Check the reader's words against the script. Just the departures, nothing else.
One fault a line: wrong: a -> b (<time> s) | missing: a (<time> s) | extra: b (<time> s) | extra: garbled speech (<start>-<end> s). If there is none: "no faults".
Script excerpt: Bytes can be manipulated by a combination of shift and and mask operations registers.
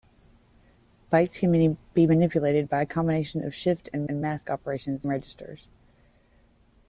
no faults